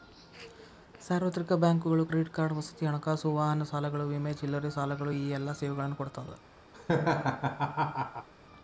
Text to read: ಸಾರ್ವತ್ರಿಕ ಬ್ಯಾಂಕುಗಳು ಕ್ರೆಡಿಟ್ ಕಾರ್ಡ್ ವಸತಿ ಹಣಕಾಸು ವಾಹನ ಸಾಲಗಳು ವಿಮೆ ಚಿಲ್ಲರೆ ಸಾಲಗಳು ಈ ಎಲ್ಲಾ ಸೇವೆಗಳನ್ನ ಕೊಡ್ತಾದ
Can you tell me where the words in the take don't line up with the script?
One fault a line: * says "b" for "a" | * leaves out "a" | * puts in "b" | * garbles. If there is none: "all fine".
all fine